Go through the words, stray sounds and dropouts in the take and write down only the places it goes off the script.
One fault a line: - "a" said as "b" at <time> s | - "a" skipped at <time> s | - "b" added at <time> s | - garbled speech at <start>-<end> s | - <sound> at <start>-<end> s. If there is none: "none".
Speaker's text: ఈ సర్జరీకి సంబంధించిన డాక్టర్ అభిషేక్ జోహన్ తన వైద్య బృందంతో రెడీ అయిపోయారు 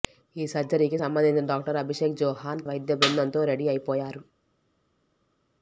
- "తన" skipped at 2.6 s